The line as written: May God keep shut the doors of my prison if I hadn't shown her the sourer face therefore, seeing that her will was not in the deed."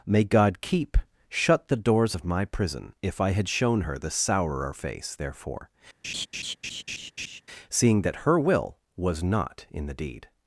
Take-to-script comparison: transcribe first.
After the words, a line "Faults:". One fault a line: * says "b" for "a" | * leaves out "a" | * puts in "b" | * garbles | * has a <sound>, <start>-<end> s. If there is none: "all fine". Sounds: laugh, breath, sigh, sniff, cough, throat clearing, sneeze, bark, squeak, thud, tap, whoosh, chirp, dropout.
May God keep shut the doors of my prison if I had shown her the sourer face therefore, seeing that her will was not in the deed."
Faults:
* says "had" for "hadn't"
* has a laugh, 6.0-7.4 s